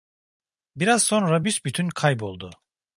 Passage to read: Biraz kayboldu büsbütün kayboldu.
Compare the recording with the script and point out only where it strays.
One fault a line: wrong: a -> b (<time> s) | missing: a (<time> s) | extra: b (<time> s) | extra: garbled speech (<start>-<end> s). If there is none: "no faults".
wrong: kayboldu -> sonra (1.0 s)